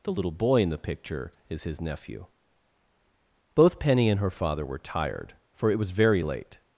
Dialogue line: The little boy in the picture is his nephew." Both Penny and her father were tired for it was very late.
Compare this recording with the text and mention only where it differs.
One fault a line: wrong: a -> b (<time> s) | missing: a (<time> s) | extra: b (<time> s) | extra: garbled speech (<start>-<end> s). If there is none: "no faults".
no faults